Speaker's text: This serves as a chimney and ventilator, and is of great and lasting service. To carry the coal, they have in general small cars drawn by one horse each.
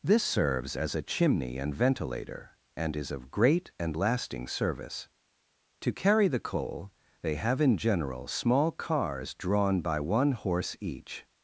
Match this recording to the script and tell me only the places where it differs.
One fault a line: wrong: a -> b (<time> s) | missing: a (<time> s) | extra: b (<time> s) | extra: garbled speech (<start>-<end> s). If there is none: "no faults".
no faults